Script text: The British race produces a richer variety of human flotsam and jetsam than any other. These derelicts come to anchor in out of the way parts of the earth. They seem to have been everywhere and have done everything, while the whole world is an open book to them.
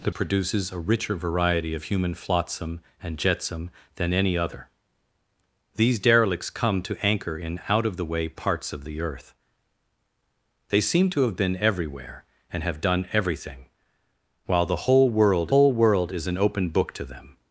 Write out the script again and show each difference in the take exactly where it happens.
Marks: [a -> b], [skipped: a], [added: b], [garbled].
The [skipped: British race] produces a richer variety of human flotsam and jetsam than any other. These derelicts come to anchor in out of the way parts of the earth. They seem to have been everywhere and have done everything, while the whole world [added: whole world] is an open book to them.